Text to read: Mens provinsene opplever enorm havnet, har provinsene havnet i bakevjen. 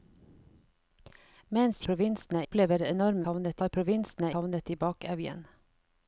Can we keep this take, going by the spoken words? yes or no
yes